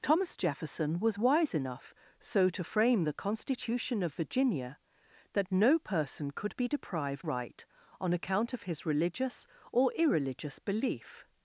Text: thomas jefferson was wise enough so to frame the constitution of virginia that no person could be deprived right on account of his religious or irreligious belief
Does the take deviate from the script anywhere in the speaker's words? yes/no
no